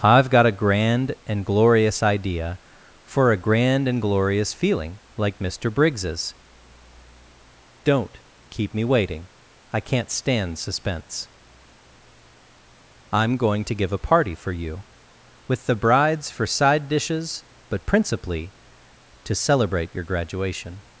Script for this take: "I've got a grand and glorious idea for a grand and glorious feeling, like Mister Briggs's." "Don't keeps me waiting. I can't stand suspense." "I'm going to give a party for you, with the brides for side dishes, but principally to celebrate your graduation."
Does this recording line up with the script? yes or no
no